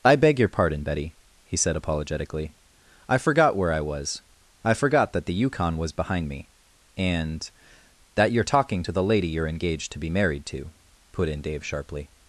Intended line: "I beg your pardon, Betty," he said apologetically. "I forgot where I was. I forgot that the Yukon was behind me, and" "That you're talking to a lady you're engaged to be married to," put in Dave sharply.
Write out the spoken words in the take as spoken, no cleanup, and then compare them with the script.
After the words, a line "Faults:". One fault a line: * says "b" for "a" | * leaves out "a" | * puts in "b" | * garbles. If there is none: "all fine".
"I beg your pardon, Betty," he said apologetically. "I forgot where I was. I forgot that the Yukon was behind me, and" "That you're talking to the lady you're engaged to be married to," put in Dave sharply.
Faults:
* says "the" for "a"